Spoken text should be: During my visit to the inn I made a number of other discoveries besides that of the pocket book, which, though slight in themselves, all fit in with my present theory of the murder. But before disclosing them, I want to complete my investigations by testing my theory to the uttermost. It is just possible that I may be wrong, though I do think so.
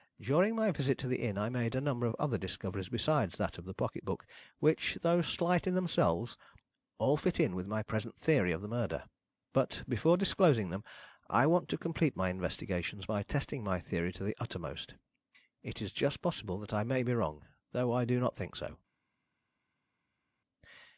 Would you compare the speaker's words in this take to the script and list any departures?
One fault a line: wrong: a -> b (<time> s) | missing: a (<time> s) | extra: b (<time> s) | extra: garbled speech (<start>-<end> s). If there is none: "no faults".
extra: not (18.2 s)